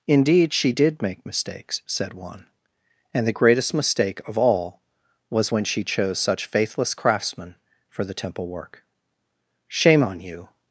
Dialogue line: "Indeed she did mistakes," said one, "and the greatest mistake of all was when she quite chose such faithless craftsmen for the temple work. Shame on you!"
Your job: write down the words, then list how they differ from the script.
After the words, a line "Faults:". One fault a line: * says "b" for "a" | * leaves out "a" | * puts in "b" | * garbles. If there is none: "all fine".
"Indeed she did make mistakes," said one, "and the greatest mistake of all was when she chose such faithless craftsmen for the temple work. Shame on you!"
Faults:
* puts in "make"
* leaves out "quite"